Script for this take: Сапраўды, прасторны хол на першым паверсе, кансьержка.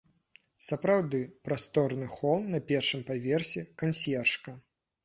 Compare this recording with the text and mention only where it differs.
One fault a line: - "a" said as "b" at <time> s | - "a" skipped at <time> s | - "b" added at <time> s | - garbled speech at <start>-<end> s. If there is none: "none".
none